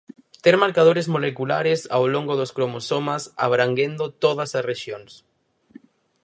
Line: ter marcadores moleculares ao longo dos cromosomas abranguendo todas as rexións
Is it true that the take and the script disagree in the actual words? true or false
false